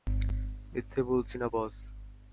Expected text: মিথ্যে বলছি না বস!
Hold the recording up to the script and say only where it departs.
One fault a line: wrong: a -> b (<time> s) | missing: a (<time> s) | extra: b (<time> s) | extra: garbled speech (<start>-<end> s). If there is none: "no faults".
no faults